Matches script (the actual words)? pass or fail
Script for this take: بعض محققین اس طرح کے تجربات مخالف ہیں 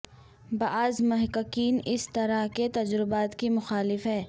fail